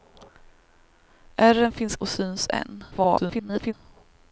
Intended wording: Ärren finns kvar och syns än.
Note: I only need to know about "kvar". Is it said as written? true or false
false